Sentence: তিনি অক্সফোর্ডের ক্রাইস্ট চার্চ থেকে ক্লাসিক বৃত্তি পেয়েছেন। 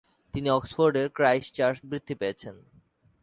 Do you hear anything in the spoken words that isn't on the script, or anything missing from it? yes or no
yes